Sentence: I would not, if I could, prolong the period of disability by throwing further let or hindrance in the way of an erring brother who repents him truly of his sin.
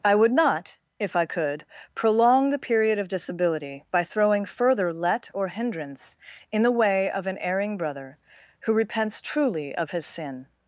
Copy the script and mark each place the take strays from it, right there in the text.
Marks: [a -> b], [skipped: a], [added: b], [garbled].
I would not, if I could, prolong the period of disability by throwing further let or hindrance in the way of an erring brother who repents [skipped: him] truly of his sin.